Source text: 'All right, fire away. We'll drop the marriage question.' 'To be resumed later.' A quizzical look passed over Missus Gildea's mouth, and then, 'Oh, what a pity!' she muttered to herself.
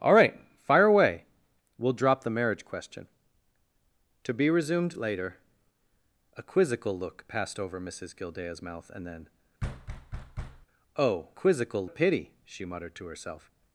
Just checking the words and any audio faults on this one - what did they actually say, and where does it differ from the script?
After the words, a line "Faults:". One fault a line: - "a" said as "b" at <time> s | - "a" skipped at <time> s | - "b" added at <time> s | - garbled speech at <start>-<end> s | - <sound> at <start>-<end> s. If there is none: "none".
'All right, fire away. We'll drop the marriage question.' 'To be resumed later.' A quizzical look passed over Missus Gildea's mouth, and then, 'Oh, quizzical a pity!' she muttered to herself.
Faults:
- thud at 9.6-10.7 s
- "what" said as "quizzical" at 11.3 s